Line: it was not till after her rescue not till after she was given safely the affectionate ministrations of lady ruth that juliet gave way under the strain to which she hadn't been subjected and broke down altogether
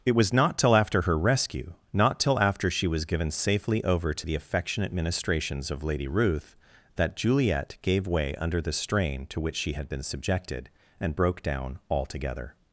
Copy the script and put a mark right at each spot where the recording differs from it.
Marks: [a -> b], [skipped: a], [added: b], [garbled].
it was not till after her rescue not till after she was given safely [added: over to] the affectionate ministrations of lady ruth that juliet gave way under the strain to which she [hadn't -> had] been subjected and broke down altogether